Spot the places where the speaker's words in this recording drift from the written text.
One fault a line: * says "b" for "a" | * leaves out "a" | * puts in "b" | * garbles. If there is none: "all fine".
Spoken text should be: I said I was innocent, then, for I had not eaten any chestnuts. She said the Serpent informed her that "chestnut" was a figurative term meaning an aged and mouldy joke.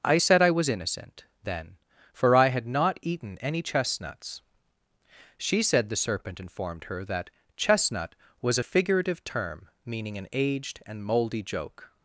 all fine